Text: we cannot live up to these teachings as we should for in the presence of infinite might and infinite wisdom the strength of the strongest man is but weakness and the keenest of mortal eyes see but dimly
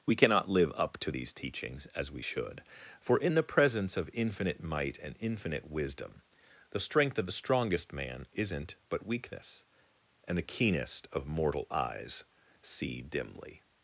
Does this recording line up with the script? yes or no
no